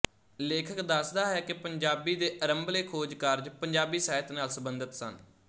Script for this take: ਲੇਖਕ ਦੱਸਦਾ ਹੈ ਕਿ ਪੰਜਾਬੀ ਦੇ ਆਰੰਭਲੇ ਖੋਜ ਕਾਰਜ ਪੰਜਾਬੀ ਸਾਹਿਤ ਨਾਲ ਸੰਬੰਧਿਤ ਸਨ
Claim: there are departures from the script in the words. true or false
false